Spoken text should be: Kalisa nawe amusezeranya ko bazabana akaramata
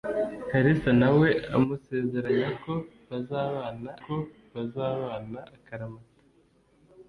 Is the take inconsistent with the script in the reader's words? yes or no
yes